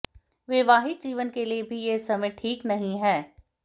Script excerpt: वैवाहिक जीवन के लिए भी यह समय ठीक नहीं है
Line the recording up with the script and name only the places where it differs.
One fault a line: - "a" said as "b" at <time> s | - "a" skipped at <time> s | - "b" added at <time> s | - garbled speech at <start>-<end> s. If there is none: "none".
none